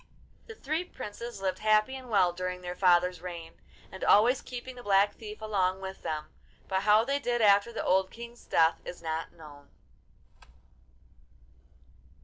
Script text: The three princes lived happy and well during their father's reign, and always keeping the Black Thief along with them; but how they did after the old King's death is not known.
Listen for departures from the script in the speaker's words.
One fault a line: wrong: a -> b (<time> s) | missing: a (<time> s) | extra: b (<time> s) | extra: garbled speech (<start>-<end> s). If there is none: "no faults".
no faults